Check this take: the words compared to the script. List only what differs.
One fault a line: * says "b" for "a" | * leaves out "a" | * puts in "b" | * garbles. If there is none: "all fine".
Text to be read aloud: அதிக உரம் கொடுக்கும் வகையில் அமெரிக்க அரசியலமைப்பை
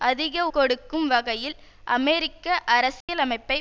* leaves out "உரம்"